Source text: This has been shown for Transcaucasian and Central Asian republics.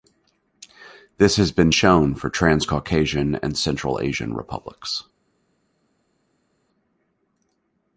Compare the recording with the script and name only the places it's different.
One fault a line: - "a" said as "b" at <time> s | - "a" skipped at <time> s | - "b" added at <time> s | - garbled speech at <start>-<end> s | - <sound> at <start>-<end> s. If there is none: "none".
none